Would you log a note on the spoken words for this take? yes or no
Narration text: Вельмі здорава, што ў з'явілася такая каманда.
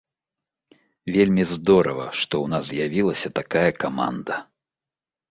yes